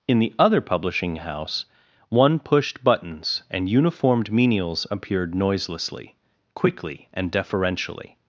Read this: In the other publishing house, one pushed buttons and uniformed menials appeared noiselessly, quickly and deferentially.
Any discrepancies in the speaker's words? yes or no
no